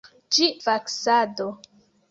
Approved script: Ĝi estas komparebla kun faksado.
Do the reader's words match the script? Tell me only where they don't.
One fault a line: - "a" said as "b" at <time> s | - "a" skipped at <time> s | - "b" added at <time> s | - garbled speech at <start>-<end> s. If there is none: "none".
- "estas komparebla kun" skipped at 0.5 s